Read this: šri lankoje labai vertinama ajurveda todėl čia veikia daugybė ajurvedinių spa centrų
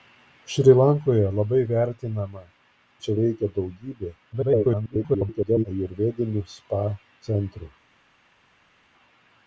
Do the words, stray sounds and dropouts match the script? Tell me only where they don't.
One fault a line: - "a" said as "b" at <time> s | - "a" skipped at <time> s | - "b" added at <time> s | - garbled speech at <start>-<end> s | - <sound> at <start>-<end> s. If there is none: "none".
- "ajurveda todėl" skipped at 2.4 s
- garbled speech at 4.3-5.7 s